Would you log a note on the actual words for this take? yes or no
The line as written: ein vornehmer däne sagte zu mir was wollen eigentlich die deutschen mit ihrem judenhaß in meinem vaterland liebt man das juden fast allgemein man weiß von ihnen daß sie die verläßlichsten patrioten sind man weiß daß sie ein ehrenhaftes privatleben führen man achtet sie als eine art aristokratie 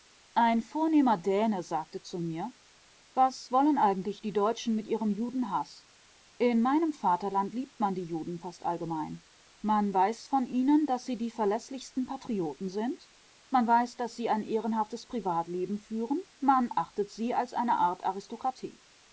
yes